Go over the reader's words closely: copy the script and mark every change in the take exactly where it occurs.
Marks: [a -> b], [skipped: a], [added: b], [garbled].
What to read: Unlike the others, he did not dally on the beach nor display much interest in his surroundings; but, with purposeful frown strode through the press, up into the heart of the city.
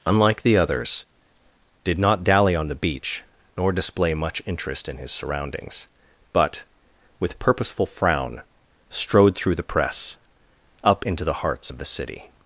Unlike the others, [skipped: he] did not dally on the beach nor display much interest in his surroundings; but, with purposeful frown strode through the press, up into the [heart -> hearts] of the city.